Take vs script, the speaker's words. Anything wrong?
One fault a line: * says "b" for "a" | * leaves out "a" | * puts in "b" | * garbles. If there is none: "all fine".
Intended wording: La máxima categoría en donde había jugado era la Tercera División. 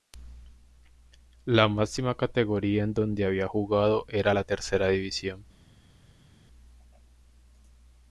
all fine